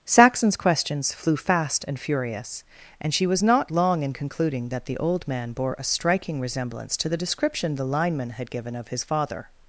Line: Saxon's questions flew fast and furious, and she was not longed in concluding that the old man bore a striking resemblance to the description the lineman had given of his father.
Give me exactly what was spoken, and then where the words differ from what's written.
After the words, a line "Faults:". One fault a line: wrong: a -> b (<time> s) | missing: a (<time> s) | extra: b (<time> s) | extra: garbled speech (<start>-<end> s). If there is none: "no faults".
Saxon's questions flew fast and furious, and she was not long in concluding that the old man bore a striking resemblance to the description the lineman had given of his father.
Faults:
wrong: longed -> long (3.7 s)